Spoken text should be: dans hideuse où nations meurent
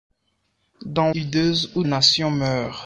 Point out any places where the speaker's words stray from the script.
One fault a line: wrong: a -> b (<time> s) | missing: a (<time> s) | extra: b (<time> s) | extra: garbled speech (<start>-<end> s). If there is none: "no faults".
no faults